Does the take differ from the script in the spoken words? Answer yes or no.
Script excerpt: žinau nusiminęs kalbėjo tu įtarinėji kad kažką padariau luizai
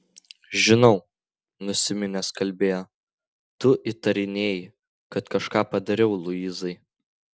no